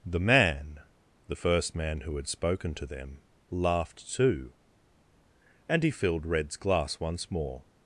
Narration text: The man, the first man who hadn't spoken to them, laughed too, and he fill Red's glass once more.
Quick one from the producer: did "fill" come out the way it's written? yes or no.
no